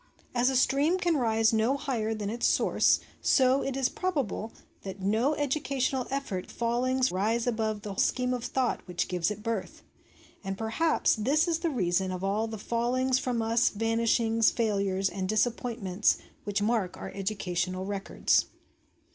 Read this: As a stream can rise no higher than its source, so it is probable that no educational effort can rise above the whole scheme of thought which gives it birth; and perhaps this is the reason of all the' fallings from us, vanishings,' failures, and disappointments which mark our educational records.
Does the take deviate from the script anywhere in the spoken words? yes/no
yes